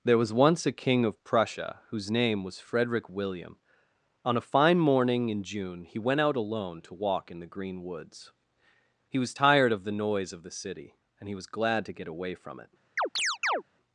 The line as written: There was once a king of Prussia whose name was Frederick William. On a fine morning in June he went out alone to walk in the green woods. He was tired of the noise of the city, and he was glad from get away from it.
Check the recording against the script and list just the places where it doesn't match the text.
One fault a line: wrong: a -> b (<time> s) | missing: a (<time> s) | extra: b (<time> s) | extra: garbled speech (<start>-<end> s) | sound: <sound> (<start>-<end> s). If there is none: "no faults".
wrong: from -> to (11.8 s)
sound: chirp (13.0-13.6 s)